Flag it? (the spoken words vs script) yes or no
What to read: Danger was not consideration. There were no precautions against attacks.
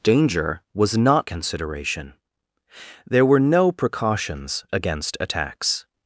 no